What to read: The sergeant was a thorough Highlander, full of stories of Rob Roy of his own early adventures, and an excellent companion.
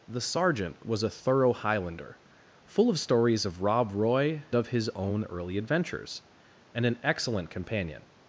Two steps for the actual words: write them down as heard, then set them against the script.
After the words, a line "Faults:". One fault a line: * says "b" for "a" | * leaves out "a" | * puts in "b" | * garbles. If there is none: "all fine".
The sergeant was a thorough Highlander, full of stories of Rob Roy of his own early adventures, and an excellent companion.
Faults:
all fine